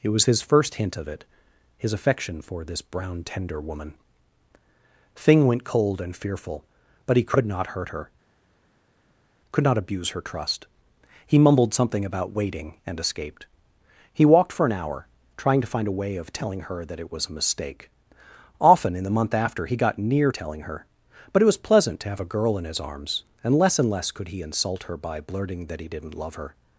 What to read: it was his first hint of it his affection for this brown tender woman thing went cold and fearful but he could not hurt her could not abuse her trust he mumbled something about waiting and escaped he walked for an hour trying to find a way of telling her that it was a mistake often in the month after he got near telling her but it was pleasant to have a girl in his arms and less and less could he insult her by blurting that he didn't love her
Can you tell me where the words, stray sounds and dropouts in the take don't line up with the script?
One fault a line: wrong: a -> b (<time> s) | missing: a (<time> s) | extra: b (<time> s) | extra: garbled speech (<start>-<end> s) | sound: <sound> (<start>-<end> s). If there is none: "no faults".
no faults